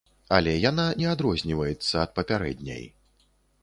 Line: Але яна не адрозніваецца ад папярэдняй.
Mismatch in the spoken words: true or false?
false